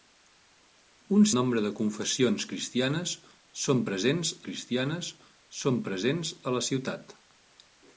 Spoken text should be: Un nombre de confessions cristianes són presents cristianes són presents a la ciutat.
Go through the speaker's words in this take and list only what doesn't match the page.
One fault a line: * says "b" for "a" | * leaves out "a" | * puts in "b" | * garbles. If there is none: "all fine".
all fine